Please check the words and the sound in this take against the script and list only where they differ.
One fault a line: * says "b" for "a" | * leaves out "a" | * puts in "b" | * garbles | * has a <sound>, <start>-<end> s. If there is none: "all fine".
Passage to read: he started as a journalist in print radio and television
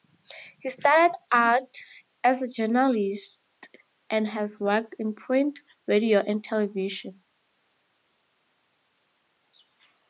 * puts in "out"
* puts in "and has worked"